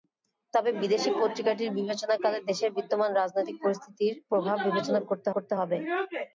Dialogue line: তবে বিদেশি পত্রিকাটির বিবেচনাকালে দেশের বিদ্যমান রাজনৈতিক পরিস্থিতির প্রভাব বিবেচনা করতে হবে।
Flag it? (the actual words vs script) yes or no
yes